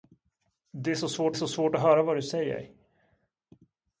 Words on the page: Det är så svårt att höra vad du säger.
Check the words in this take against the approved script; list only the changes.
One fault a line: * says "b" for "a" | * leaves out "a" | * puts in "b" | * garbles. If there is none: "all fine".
* puts in "så svårt"